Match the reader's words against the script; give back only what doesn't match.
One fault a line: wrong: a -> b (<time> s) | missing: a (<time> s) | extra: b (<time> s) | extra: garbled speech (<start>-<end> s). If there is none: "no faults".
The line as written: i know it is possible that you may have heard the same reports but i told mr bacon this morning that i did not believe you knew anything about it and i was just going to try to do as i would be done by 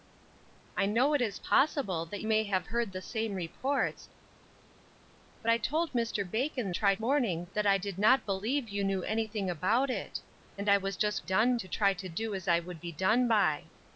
missing: you (2.2 s)
wrong: this -> try (6.7 s)
wrong: going -> done (11.2 s)